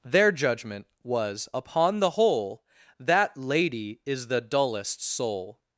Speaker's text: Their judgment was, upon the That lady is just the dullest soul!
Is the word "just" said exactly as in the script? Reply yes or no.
no